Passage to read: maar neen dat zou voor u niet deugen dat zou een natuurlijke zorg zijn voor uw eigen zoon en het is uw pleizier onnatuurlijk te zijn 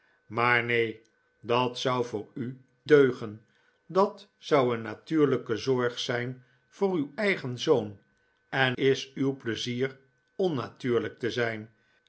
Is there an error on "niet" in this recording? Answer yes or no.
yes